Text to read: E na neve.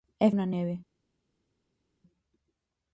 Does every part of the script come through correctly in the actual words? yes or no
yes